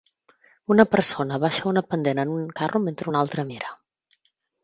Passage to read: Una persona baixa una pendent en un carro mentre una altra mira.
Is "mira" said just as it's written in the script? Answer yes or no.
yes